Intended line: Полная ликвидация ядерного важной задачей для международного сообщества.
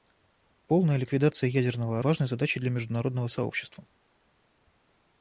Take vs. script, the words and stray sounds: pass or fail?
pass